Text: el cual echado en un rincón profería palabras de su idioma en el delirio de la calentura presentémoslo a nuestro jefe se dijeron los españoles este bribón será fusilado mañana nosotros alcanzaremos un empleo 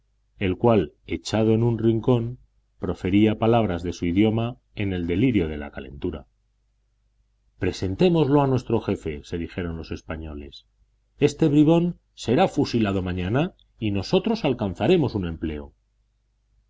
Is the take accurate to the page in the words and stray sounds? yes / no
no